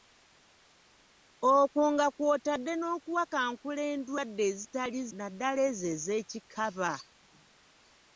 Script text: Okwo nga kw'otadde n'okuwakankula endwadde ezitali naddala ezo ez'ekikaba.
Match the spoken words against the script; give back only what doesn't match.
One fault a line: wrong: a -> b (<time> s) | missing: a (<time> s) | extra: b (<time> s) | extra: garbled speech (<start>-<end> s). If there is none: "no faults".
no faults